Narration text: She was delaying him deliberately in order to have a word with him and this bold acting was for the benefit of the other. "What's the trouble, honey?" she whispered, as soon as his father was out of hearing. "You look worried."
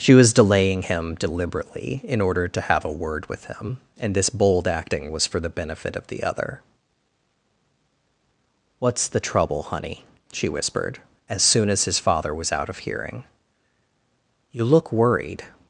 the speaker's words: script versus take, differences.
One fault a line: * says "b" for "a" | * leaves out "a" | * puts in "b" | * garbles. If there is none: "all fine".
all fine